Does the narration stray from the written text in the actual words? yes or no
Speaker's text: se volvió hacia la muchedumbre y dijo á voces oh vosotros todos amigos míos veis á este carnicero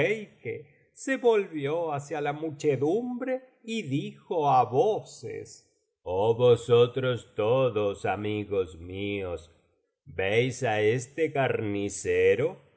no